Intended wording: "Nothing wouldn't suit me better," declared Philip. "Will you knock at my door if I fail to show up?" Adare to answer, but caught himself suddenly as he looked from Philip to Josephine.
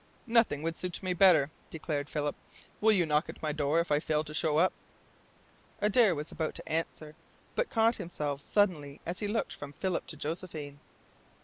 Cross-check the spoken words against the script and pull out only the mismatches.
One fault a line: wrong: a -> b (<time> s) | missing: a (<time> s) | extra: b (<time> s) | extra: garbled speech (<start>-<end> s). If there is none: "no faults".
wrong: wouldn't -> would (0.6 s)
extra: was about (6.2 s)